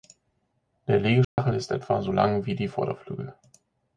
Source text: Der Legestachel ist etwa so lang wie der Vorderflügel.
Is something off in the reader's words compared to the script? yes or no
yes